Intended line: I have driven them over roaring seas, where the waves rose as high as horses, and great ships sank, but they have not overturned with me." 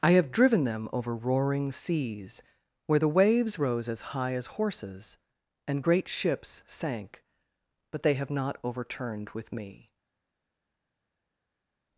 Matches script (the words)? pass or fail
pass